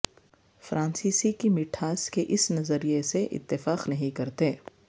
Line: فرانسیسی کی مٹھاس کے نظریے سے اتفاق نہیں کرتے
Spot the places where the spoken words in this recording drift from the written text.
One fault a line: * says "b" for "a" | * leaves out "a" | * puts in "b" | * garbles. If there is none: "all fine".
* puts in "اس"